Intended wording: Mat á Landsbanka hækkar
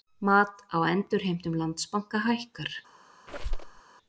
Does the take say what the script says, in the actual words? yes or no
no